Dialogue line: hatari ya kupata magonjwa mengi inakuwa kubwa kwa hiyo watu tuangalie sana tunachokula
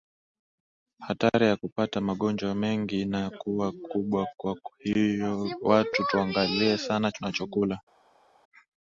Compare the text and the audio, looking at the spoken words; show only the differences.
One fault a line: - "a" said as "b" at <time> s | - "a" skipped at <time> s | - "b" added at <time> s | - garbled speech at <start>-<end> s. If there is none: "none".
none